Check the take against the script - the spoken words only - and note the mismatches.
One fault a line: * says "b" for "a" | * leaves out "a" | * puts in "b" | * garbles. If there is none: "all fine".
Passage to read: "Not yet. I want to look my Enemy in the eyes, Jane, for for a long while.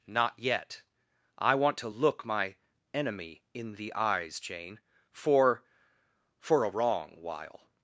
* says "wrong" for "long"